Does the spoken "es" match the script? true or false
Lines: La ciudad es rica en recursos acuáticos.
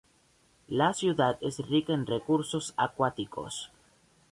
true